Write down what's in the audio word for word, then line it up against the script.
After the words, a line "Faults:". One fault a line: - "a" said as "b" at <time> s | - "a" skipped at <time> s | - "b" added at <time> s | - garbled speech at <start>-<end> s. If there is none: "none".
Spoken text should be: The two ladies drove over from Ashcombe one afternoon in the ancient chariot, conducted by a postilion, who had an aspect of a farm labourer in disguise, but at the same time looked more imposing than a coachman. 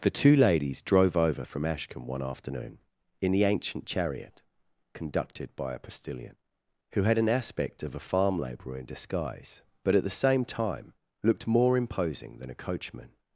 The two ladies drove over from Ashcombe one afternoon in the ancient chariot, conducted by a postilion, who had an aspect of a farm labourer in disguise, but at the same time looked more imposing than a coachman.
Faults:
none